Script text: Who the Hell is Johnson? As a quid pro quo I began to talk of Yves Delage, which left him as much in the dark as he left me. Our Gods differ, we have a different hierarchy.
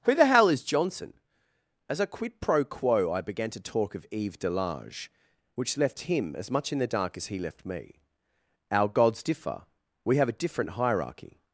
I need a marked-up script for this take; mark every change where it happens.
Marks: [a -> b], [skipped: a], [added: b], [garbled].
Who the Hell is Johnson? As a quid pro quo I began to talk of Yves Delage, which left him as much in the dark as he left me. Our Gods differ, we have a different hierarchy.